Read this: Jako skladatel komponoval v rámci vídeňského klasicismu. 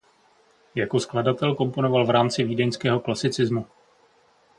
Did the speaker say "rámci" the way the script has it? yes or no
yes